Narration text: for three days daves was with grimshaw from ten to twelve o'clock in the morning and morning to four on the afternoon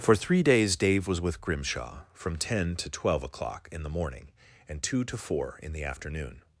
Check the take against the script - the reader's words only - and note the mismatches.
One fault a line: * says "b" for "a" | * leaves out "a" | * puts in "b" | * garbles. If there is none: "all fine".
* says "dave" for "daves"
* says "two" for "morning"
* says "in" for "on"